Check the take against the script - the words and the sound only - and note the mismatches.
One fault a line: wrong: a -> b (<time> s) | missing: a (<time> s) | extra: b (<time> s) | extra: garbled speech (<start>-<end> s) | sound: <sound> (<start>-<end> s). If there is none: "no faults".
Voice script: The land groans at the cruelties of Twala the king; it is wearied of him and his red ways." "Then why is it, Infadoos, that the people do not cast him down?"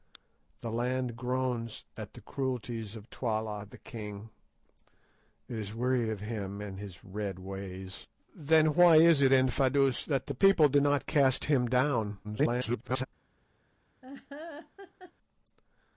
extra: garbled speech (12.2-13.1 s)
sound: laugh (14.0-15.1 s)